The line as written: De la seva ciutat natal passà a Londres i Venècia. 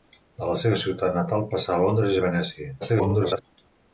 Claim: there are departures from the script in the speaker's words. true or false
true